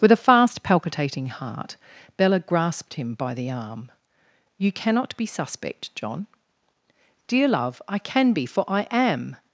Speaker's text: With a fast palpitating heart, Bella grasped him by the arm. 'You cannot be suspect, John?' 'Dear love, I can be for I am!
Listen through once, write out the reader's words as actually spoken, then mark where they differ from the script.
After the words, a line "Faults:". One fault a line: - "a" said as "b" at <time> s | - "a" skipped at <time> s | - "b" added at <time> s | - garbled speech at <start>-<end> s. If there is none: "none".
With a fast palpitating heart, Bella grasped him by the arm. 'You cannot be suspect, John?' 'Dear love, I can be for I am!
Faults:
none